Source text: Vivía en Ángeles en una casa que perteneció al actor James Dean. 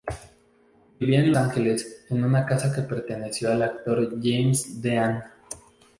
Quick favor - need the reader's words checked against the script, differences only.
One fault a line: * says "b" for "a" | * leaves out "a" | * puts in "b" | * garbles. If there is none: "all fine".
all fine